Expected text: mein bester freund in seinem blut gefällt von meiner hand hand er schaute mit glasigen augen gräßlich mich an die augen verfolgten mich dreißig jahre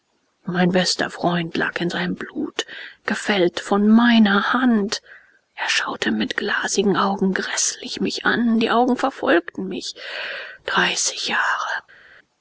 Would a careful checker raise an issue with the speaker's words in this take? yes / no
yes